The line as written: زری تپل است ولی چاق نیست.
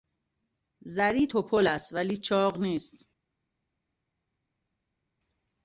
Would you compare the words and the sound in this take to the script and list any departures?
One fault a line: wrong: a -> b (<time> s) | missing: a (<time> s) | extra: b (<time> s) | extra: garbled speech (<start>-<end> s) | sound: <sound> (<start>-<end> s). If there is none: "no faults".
no faults